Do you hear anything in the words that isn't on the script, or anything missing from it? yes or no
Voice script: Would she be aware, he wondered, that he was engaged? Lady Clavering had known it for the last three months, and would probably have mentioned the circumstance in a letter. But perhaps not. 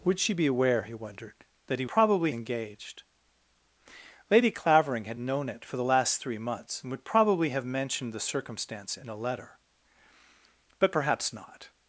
yes